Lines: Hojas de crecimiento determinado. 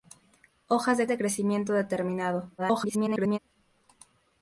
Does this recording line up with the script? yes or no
no